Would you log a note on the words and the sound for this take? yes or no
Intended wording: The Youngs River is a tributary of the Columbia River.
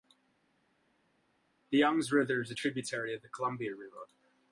no